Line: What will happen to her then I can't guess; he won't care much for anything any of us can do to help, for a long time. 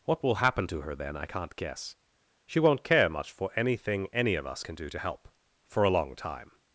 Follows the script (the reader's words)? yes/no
no